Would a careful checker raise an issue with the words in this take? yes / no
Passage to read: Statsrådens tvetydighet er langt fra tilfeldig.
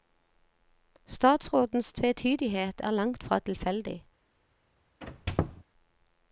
no